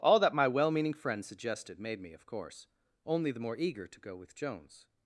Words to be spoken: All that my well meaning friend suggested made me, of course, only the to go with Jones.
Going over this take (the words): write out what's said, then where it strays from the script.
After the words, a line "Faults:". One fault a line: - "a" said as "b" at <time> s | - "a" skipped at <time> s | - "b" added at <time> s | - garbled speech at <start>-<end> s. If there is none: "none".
All that my well meaning friend suggested made me, of course, only the more eager to go with Jones.
Faults:
- "more eager" added at 3.4 s